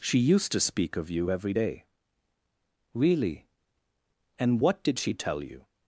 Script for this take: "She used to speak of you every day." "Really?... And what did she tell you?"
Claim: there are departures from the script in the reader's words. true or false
false